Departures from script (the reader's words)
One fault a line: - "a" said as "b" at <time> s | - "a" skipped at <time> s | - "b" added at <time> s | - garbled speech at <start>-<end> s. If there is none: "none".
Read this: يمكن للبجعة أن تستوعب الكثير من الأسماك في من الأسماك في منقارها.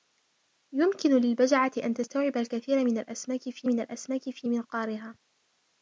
none